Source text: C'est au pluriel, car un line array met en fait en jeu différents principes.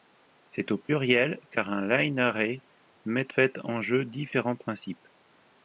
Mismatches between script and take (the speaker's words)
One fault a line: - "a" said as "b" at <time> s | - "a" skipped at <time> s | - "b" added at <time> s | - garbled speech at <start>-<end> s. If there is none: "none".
- "en" skipped at 3.3 s